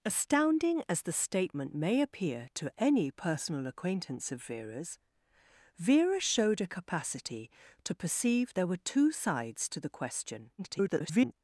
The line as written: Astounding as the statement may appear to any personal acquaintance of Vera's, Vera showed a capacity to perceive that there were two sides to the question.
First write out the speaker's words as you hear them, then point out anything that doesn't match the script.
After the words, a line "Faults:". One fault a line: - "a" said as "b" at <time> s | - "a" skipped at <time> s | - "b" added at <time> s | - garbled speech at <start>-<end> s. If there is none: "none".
Astounding as the statement may appear to any personal acquaintance of Vera's, Vera showed a capacity to perceive there were two sides to the question. [garbled]
Faults:
- "that" skipped at 8.5 s
- garbled speech at 10.6-11.3 s